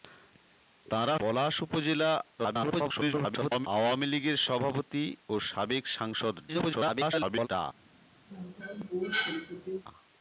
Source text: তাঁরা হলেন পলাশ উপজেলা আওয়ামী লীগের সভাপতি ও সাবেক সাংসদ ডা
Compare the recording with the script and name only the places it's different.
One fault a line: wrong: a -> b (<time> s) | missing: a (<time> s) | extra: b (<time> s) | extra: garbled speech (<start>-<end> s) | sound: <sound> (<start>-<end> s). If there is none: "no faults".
missing: হলেন (1.1 s)
extra: garbled speech (2.4-3.7 s)
extra: garbled speech (6.5-7.5 s)
sound: cough (8.3-9.8 s)